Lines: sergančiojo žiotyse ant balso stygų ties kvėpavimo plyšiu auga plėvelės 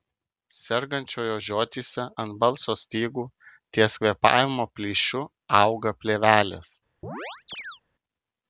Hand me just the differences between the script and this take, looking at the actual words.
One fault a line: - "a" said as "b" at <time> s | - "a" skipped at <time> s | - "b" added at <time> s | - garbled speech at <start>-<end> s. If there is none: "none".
none